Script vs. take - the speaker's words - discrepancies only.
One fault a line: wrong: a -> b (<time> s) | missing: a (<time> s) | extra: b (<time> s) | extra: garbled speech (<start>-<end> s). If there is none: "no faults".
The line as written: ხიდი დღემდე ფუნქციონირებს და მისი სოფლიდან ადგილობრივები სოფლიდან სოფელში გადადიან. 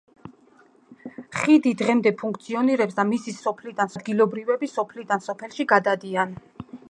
no faults